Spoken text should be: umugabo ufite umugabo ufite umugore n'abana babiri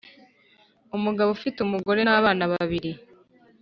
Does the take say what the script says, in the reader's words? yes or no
no